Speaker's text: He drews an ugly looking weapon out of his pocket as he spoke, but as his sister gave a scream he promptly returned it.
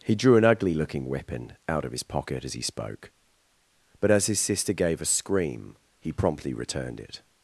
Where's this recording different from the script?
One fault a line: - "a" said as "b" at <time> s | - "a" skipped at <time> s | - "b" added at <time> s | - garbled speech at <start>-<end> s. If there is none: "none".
- "drews" said as "drew" at 0.1 s